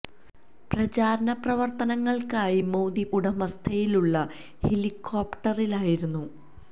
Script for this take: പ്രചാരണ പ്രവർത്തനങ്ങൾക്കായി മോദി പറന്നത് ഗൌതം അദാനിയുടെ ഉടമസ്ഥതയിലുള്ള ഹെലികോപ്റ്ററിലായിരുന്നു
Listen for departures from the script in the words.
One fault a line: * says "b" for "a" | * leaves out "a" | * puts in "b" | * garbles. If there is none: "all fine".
* leaves out "പറന്നത് ഗൌതം അദാനിയുടെ"